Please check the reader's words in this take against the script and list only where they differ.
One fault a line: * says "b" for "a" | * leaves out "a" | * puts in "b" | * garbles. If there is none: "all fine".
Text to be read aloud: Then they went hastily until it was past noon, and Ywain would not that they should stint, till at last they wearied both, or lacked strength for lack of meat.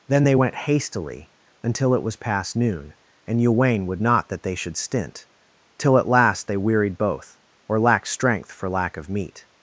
all fine